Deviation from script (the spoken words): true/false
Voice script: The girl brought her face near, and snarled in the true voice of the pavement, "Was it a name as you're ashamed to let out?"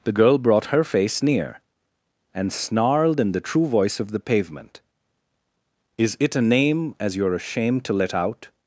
true